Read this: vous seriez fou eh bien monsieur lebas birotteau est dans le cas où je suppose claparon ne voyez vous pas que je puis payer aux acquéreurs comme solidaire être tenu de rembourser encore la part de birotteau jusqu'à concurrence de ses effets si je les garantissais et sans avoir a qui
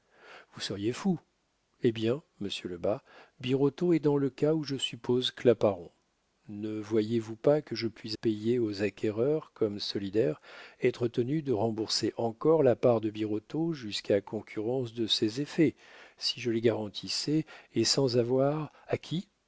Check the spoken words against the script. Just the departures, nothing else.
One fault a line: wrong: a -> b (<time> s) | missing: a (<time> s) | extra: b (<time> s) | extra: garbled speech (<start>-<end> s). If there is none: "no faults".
no faults